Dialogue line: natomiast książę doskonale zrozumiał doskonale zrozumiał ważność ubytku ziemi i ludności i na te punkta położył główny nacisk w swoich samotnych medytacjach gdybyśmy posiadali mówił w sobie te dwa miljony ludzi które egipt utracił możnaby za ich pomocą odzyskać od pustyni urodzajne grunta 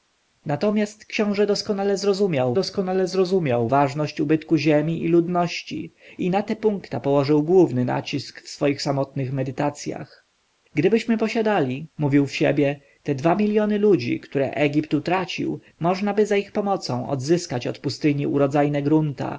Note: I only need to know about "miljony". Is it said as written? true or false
true